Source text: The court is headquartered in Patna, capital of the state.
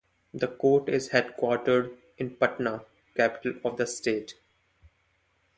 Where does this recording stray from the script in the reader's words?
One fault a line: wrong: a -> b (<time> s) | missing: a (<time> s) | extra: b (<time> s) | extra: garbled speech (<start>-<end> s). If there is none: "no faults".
no faults